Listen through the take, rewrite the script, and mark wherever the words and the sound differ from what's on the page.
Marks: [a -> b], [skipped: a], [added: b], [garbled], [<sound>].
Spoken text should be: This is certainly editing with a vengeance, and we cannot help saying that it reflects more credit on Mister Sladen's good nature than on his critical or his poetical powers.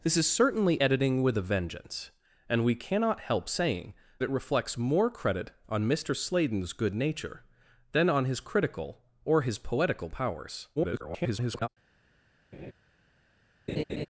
This is certainly editing with a vengeance, and we cannot help saying [skipped: that] it reflects more credit on Mister Sladen's good nature than on his critical or his poetical powers. [garbled] [laugh] [laugh]